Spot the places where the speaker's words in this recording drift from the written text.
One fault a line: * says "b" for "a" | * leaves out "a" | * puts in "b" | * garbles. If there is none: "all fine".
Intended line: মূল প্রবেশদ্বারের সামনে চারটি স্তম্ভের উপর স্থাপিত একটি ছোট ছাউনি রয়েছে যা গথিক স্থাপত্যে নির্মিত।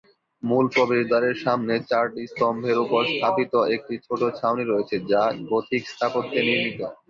all fine